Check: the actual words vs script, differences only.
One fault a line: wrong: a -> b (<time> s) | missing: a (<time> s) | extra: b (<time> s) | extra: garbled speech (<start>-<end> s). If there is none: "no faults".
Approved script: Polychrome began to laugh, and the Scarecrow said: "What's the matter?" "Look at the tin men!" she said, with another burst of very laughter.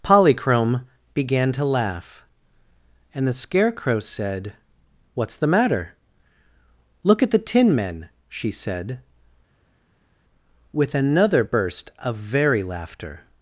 no faults